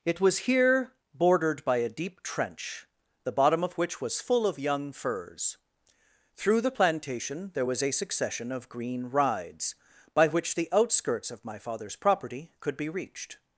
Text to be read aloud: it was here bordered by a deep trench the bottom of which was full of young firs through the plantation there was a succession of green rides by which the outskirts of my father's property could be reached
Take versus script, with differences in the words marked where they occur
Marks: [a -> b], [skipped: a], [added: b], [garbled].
it was here bordered by a deep trench the bottom of which was full of young firs through the plantation there was a succession of green rides by which the outskirts of my father's property could be reached